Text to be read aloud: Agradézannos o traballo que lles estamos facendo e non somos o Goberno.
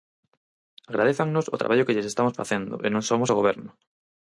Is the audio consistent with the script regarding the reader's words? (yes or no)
yes